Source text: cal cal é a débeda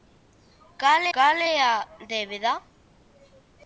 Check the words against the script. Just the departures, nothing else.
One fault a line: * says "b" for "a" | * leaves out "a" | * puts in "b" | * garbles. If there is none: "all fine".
all fine